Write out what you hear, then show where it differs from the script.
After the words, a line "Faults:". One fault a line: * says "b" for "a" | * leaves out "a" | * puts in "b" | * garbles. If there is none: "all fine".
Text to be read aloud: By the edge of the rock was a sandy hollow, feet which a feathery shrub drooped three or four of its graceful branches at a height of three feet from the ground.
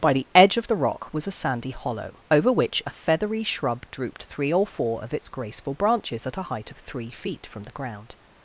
By the edge of the rock was a sandy hollow, over which a feathery shrub drooped three or four of its graceful branches at a height of three feet from the ground.
Faults:
* says "over" for "feet"